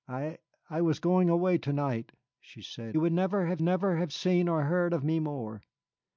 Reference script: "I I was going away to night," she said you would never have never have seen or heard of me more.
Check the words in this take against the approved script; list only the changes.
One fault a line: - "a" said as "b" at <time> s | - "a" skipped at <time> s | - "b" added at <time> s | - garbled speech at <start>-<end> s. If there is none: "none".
none